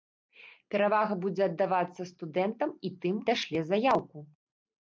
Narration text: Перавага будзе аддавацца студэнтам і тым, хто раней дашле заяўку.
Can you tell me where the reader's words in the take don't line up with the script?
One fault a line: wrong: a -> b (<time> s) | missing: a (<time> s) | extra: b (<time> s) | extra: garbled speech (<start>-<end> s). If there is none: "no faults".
missing: хто раней (3.2 s)